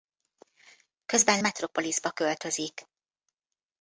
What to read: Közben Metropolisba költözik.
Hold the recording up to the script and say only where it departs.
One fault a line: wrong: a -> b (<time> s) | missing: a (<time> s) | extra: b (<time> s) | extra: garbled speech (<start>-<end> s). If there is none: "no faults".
no faults